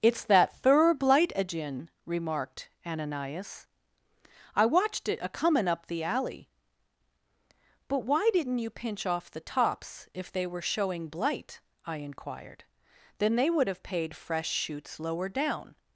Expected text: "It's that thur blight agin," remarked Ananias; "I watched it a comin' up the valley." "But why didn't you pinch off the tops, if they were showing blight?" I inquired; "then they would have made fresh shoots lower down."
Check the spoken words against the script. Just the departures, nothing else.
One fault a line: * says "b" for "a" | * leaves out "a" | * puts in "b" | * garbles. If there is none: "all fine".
* says "alley" for "valley"
* says "paid" for "made"